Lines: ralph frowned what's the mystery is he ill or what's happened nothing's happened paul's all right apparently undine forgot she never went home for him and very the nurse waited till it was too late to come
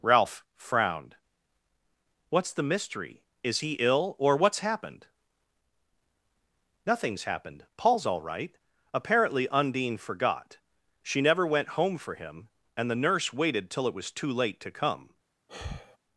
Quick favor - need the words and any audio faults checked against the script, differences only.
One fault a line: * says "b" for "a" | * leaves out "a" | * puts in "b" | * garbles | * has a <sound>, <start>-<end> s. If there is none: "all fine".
* leaves out "very"
* has a sigh, 15.5-16.0 s